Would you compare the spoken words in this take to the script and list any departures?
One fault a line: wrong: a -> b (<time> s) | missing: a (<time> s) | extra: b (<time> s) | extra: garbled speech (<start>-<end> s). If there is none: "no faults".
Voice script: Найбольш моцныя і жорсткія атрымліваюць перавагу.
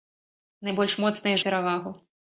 missing: жорсткія атрымліваюць (1.4 s)